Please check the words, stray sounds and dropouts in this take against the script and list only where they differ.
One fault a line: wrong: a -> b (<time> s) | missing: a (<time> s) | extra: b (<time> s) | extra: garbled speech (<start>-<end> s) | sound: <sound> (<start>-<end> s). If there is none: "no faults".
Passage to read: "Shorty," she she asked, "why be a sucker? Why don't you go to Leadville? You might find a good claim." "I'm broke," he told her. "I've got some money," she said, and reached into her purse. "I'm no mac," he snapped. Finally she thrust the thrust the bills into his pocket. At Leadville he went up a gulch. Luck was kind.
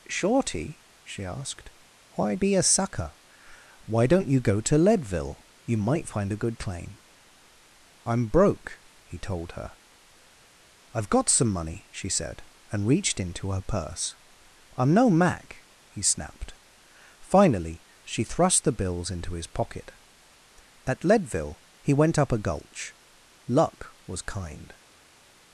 missing: she (1.2 s)
missing: thrust the (18.8 s)